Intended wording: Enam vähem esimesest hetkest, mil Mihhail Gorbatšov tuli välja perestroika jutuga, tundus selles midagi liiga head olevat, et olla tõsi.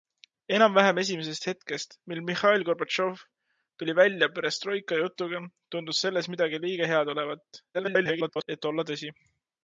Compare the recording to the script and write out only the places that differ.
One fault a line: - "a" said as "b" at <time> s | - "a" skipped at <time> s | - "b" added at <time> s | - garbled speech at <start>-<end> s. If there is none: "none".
- garbled speech at 7.7-8.5 s